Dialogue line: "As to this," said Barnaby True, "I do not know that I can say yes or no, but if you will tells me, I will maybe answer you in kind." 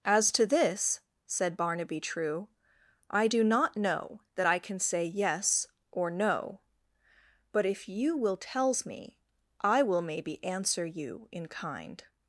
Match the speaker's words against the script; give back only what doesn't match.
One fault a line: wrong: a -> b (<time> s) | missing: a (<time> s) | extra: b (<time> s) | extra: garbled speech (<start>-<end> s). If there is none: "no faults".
no faults